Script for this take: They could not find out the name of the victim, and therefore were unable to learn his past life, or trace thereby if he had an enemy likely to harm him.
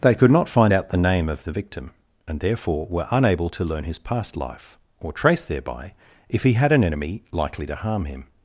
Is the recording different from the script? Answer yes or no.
no